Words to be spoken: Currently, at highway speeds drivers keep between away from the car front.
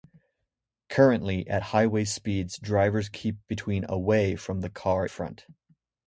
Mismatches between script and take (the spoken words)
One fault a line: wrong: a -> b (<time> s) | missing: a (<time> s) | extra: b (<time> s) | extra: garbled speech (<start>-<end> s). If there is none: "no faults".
no faults